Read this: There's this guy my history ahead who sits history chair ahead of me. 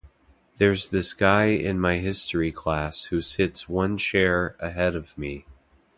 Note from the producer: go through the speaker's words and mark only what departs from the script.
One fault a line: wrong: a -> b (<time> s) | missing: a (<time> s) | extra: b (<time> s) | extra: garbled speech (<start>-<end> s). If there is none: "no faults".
extra: in (1.5 s)
wrong: ahead -> class (2.5 s)
wrong: history -> one (3.7 s)